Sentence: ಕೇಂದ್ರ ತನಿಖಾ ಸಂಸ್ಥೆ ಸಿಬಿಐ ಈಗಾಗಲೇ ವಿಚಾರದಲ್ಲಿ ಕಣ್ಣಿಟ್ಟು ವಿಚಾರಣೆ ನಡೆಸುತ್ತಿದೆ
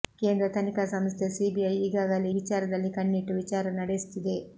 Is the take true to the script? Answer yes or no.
yes